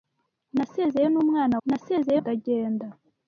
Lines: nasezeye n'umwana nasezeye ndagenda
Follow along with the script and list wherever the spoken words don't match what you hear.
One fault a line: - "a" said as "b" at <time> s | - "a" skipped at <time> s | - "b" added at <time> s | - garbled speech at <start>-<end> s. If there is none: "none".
none